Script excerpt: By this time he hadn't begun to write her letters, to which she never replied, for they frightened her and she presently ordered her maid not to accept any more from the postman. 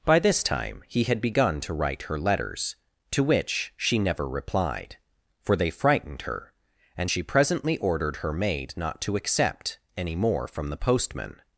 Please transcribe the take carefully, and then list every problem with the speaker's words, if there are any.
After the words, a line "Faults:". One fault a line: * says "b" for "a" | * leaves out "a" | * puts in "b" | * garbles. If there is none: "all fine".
By this time he had begun to write her letters, to which she never replied, for they frightened her and she presently ordered her maid not to accept any more from the postman.
Faults:
* says "had" for "hadn't"